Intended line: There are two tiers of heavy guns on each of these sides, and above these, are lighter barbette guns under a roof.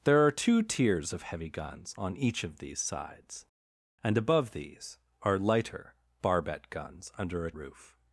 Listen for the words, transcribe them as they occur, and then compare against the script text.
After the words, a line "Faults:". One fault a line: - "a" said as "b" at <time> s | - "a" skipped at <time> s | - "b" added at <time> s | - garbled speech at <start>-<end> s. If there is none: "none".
There are two tiers of heavy guns on each of these sides, and above these, are lighter barbette guns under a roof.
Faults:
none